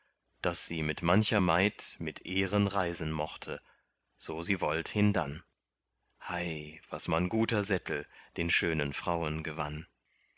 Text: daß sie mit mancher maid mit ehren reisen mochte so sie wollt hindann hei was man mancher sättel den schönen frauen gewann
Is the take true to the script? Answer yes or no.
no